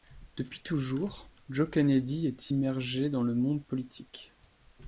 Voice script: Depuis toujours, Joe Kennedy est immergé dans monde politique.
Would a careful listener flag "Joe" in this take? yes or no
no